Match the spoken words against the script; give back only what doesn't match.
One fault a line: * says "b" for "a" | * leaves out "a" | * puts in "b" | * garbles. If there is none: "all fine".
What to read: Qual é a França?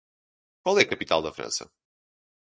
* puts in "capital da"